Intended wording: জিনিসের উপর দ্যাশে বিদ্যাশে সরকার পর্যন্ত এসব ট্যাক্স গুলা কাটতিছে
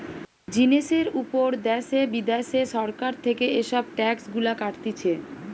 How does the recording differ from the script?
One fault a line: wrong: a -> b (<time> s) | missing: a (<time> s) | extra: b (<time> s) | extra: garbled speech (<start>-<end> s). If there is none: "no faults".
wrong: পর্যন্ত -> থেকে (3.2 s)